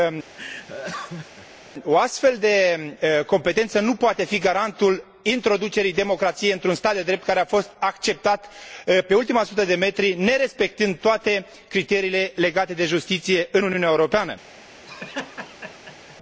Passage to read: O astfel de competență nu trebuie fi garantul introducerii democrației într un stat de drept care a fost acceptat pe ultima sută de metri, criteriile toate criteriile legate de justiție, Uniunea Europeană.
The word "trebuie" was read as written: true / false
false